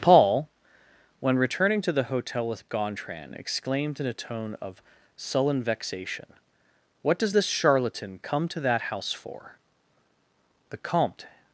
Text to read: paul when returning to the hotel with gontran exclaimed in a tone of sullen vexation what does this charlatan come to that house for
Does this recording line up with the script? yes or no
no